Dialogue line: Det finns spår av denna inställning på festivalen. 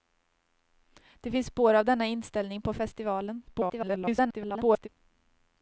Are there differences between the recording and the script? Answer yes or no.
yes